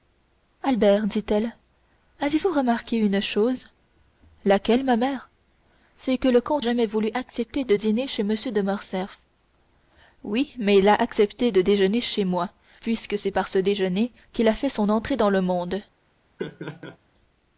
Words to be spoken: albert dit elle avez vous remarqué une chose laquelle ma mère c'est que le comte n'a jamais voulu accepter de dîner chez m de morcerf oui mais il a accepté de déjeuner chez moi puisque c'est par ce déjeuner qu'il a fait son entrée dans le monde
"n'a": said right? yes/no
no